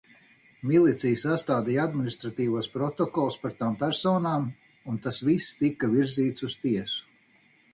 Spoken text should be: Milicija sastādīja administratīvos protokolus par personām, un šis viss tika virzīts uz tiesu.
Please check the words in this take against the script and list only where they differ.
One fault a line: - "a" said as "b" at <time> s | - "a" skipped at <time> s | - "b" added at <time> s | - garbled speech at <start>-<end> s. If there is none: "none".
- "tām" added at 3.6 s
- "šis" said as "tas" at 5.0 s